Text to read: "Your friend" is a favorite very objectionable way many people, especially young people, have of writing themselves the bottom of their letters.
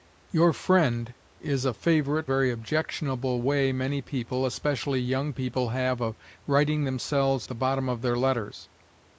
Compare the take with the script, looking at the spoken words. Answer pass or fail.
pass